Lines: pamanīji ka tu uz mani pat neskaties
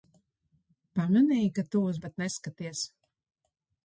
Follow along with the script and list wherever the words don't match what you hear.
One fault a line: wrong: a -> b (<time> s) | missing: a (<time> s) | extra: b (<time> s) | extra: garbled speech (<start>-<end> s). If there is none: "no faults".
missing: mani (2.0 s)